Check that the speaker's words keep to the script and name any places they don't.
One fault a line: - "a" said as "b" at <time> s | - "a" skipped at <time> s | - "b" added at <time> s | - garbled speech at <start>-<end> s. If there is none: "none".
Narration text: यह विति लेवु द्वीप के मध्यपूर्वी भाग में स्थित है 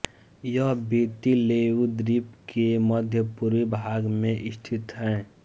none